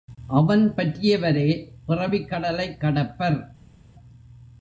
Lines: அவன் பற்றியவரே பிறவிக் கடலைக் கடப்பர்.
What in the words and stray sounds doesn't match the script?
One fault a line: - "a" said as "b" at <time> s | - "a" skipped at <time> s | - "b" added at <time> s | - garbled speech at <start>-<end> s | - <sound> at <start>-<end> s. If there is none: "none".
none